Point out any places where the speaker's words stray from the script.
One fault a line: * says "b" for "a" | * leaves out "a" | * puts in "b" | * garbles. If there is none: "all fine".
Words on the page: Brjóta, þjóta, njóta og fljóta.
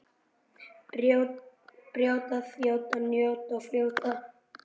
all fine